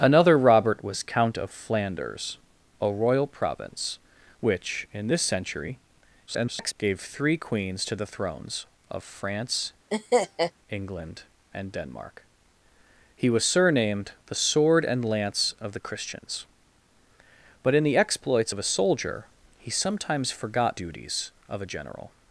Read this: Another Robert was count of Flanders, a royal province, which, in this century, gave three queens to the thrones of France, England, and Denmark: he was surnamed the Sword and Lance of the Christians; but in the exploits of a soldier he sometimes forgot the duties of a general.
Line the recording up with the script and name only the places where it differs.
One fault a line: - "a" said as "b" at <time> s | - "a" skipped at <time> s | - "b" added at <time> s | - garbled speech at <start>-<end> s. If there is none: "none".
- garbled speech at 6.3-6.7 s
- "the" skipped at 20.8 s